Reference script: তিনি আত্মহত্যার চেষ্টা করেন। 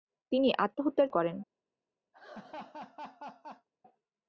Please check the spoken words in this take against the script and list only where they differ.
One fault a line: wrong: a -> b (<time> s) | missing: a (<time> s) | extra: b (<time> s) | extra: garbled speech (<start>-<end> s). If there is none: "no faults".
missing: চেষ্টা (1.1 s)